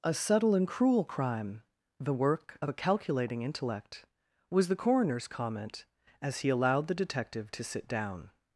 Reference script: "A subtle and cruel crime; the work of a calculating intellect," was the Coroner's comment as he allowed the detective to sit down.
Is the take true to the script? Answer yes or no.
yes